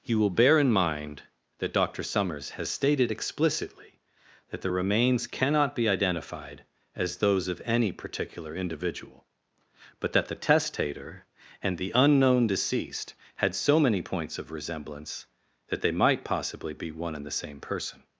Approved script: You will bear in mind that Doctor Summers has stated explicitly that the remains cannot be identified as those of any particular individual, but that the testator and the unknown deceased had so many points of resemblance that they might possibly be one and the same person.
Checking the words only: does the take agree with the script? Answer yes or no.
yes